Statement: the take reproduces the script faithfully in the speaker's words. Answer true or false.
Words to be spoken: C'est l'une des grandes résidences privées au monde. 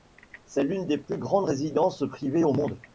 false